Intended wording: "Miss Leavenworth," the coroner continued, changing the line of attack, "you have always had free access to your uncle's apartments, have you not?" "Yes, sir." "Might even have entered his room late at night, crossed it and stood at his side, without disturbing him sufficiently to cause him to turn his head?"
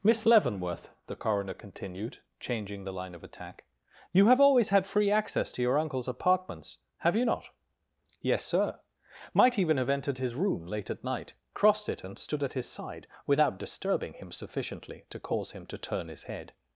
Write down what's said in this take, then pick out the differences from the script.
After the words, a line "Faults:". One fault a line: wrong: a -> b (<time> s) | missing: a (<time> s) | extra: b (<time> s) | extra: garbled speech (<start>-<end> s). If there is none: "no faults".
"Miss Leavenworth," the coroner continued, changing the line of attack, "you have always had free access to your uncle's apartments, have you not?" "Yes, sir." "Might even have entered his room late at night, crossed it and stood at his side, without disturbing him sufficiently to cause him to turn his head?"
Faults:
no faults